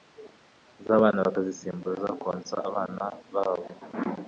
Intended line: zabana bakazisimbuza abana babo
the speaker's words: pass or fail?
fail